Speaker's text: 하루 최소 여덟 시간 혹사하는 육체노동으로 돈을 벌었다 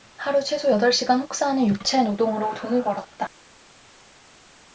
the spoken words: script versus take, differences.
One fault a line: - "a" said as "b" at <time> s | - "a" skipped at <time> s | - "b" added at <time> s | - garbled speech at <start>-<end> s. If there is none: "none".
none